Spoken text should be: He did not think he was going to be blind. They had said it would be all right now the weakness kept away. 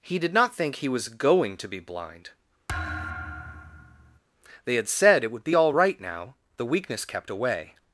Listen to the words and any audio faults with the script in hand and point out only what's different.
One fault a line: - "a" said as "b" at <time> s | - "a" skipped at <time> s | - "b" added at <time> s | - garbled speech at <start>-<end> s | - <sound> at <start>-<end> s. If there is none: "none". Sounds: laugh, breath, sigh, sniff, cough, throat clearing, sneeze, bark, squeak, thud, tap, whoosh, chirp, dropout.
- thud at 2.7-4.2 s